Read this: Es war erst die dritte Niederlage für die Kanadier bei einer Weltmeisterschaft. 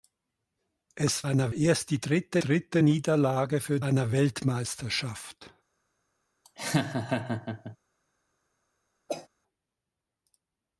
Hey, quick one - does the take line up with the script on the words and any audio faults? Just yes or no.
no